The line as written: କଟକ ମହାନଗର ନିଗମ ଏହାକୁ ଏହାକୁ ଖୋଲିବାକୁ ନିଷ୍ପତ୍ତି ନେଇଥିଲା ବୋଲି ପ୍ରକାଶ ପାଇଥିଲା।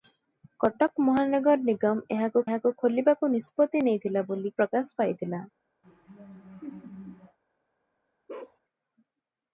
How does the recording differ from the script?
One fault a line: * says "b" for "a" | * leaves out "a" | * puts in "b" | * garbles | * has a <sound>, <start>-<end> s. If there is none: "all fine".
* has a laugh, 5.8-7.4 s
* has a bark, 8.3-8.6 s